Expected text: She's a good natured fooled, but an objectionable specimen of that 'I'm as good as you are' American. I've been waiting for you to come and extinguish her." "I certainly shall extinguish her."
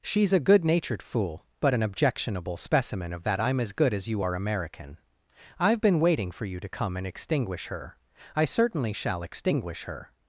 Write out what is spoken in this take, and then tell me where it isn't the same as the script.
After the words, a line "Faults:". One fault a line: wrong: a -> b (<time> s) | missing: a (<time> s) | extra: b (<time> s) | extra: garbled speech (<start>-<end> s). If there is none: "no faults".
She's a good natured fool, but an objectionable specimen of that 'I'm as good as you are' American. I've been waiting for you to come and extinguish her." "I certainly shall extinguish her."
Faults:
wrong: fooled -> fool (1.0 s)